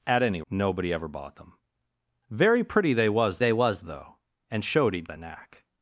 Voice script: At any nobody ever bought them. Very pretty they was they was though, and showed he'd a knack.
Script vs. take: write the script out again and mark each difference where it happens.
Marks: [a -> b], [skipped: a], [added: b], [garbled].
At any nobody ever bought them. Very pretty they was they was though, and showed he'd a knack.